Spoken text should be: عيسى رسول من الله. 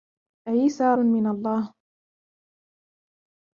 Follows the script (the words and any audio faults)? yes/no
no